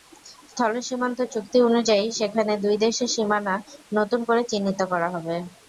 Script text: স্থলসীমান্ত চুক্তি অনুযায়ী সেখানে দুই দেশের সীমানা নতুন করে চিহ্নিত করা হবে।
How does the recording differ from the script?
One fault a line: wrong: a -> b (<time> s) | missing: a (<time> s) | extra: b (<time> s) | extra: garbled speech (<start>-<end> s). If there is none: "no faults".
no faults